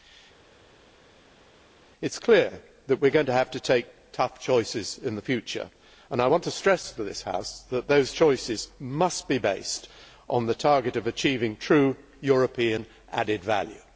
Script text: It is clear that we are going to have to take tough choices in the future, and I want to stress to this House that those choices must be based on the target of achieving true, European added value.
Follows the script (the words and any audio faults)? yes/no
yes